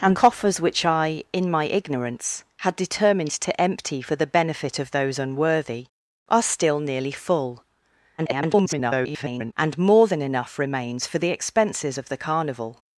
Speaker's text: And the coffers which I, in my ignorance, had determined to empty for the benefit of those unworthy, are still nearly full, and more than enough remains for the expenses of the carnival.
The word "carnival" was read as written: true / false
true